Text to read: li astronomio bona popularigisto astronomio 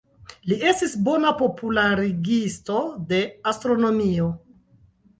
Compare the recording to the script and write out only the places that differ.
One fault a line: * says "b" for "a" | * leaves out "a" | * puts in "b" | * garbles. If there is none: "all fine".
* says "estis" for "astronomio"
* puts in "de"